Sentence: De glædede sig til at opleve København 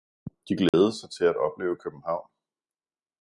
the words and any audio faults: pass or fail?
fail